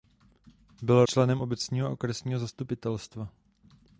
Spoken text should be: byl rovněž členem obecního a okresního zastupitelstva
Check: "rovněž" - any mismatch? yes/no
yes